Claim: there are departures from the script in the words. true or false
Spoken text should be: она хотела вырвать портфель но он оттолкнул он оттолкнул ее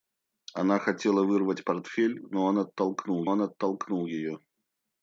false